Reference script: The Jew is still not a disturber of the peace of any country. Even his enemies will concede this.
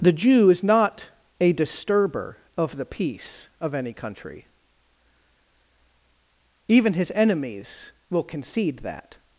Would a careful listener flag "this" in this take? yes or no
yes